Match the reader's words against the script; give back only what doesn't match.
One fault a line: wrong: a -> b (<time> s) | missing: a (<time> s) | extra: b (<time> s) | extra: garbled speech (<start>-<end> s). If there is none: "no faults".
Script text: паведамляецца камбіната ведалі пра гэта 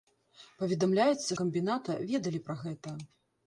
no faults